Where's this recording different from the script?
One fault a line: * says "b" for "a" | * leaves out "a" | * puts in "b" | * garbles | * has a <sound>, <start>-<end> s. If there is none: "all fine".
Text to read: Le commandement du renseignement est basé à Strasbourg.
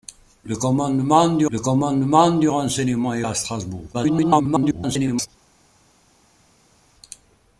* puts in "le commandement du"
* leaves out "basé"
* garbles